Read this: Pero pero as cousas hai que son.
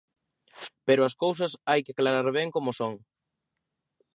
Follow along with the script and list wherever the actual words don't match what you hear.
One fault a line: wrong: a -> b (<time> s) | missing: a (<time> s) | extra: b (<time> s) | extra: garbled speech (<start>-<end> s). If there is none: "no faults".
missing: pero (1.0 s)
extra: aclarar ben como (1.9 s)